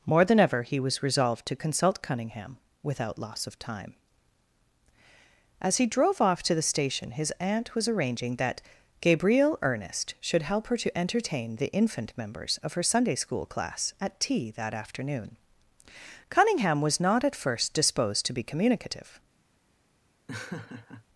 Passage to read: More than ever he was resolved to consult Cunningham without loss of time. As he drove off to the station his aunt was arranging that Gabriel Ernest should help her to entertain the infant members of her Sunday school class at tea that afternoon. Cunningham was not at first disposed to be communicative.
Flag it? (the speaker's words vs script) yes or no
no